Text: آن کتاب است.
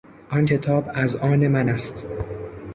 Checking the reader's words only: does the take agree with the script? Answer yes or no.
no